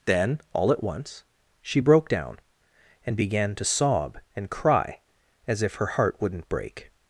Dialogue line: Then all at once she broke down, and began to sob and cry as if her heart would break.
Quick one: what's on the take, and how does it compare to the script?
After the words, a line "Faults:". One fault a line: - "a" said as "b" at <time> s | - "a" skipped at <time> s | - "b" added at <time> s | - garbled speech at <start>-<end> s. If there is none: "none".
Then all at once she broke down, and began to sob and cry as if her heart wouldn't break.
Faults:
- "would" said as "wouldn't" at 6.2 s